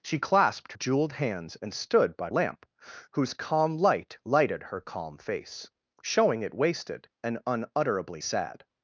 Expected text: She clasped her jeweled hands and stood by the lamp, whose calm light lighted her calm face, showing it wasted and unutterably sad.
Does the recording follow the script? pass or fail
fail